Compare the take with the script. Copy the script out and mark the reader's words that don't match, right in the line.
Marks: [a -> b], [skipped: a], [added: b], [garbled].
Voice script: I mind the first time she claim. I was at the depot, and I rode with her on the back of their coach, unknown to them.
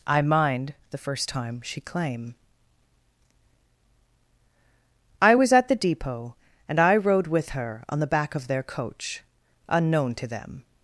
I mind the first time she claim. I was at the depot, and I rode with her on the back of their coach, unknown to them.